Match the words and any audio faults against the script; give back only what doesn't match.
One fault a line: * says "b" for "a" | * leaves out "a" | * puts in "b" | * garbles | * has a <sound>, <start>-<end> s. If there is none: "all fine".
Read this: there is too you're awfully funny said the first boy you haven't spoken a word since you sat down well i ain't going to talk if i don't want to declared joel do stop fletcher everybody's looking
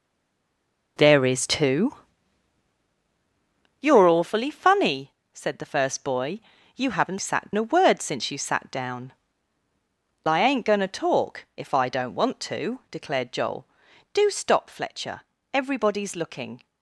* says "sat" for "spoken"
* leaves out "well"